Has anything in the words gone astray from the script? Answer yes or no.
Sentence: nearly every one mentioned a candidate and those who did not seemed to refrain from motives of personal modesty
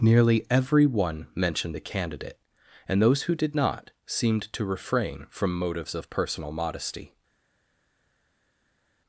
no